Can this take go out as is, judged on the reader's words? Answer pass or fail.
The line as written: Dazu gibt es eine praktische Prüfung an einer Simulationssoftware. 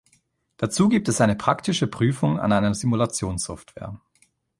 pass